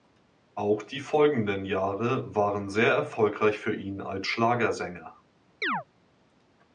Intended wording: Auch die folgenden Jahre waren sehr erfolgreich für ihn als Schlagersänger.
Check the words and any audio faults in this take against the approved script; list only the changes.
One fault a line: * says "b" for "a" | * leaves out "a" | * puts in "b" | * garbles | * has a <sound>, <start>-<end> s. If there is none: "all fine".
* has a chirp, 5.6-5.8 s